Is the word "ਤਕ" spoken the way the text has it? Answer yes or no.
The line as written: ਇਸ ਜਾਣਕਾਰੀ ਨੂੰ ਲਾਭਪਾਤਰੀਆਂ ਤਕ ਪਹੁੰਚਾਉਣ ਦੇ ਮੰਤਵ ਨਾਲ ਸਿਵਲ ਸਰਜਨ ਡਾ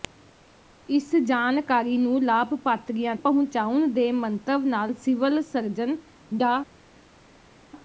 no